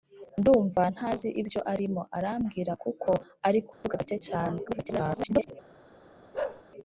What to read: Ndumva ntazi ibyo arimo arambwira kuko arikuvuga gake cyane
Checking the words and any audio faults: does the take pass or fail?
fail